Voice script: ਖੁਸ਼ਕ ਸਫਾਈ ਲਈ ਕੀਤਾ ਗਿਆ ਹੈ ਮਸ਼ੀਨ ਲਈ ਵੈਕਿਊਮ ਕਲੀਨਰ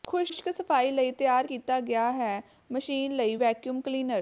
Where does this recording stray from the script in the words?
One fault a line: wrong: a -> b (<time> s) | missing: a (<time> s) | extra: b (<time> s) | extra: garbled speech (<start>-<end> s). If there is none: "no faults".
extra: ਤਿਆਰ (1.1 s)